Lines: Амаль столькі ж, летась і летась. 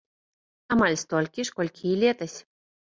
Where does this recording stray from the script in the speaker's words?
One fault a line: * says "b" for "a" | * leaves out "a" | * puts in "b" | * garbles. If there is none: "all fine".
* says "колькі" for "летась"